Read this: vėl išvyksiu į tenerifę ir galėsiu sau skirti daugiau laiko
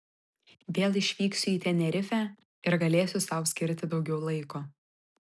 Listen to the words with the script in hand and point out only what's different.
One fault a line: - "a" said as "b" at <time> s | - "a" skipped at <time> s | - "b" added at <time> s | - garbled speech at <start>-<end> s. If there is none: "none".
none